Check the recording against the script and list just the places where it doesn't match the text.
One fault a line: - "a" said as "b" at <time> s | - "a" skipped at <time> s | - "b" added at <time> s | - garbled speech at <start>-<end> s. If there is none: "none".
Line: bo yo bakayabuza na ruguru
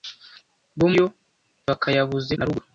none